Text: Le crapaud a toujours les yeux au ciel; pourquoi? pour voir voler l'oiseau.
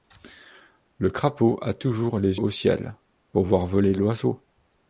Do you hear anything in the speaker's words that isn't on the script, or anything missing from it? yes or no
yes